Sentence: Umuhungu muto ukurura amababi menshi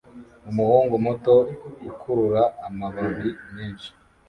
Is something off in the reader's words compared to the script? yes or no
no